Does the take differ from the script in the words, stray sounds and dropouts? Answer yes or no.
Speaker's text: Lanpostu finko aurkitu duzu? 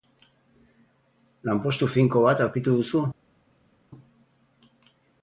yes